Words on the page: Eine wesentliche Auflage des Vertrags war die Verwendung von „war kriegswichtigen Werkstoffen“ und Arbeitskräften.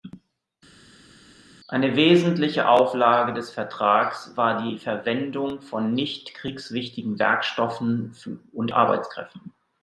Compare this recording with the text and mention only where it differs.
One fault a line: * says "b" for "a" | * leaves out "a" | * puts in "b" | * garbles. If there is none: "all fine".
* says "nicht" for "war"